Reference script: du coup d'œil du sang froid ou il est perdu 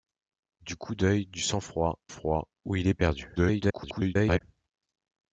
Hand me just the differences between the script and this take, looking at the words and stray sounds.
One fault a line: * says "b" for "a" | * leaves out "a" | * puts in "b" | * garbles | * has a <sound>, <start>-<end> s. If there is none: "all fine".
* puts in "froid"
* garbles